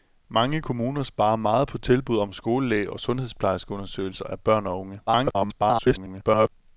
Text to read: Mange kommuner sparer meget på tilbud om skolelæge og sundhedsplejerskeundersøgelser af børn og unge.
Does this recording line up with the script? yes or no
no